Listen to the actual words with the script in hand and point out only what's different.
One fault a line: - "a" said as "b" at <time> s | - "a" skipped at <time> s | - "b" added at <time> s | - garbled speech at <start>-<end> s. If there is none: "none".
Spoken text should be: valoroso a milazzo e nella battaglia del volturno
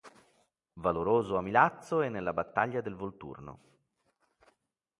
none